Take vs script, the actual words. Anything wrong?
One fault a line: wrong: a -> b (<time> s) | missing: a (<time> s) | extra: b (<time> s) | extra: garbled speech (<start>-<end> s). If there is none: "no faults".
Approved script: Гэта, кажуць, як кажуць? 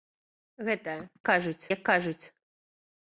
no faults